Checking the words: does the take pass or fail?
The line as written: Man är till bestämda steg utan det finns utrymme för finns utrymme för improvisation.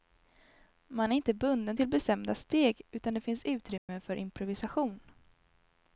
fail